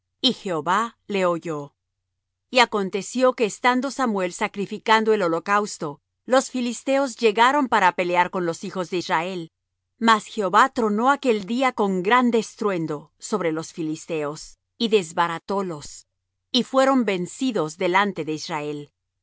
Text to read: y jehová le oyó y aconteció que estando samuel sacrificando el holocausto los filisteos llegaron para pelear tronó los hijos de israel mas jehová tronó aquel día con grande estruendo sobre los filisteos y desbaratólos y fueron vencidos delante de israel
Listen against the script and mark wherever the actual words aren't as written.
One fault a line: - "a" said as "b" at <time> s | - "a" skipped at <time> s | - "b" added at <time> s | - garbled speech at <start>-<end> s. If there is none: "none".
- "tronó" said as "con" at 8.3 s